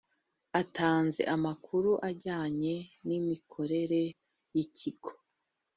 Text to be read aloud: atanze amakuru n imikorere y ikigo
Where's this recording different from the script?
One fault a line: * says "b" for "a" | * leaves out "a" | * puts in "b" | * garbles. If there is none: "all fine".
* puts in "ajyanye"